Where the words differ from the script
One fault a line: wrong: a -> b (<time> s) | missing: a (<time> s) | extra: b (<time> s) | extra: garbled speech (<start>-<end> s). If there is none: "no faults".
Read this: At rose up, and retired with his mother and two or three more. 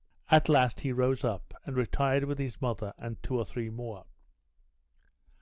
extra: last he (0.5 s)